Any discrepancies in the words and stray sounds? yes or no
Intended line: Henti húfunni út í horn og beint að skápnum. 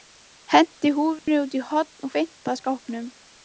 yes